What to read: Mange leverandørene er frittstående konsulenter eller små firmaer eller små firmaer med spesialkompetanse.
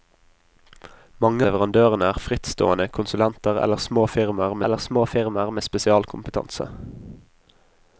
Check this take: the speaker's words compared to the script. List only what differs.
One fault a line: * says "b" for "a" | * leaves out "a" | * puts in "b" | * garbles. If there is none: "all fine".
all fine